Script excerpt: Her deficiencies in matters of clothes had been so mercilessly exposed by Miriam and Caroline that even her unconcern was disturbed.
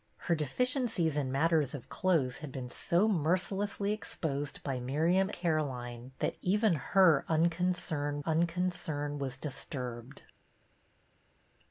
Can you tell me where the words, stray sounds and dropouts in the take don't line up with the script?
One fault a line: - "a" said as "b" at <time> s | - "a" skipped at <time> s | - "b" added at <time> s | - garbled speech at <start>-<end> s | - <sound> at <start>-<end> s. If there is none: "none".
- "and" skipped at 5.3 s
- "unconcern" added at 8.2 s